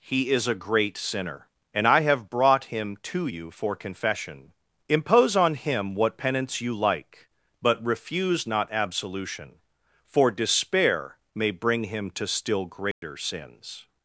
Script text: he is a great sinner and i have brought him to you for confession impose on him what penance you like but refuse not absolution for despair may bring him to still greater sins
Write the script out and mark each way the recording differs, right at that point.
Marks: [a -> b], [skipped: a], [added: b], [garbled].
he is a great sinner and i have brought him to you for confession impose on him what penance you like but refuse not absolution for despair may bring him to still greater sins